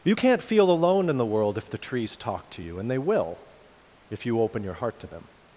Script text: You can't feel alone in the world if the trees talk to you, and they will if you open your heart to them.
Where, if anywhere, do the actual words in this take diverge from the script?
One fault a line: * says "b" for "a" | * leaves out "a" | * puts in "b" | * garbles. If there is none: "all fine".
all fine